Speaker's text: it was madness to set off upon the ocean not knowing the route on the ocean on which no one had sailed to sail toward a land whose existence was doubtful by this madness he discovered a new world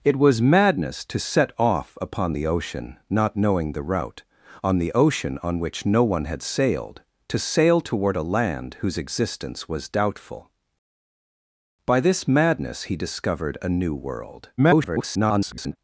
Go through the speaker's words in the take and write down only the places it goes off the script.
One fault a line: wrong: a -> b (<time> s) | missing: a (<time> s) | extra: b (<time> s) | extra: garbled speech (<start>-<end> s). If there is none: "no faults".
extra: garbled speech (14.6-15.8 s)